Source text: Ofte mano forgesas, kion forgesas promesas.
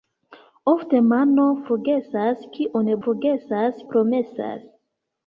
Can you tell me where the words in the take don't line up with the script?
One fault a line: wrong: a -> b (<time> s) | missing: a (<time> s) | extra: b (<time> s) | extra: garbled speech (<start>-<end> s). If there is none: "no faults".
no faults